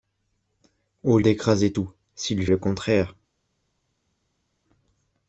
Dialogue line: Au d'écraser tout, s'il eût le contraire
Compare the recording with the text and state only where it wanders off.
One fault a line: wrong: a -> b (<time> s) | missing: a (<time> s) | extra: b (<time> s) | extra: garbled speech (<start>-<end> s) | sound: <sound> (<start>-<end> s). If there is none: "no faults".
no faults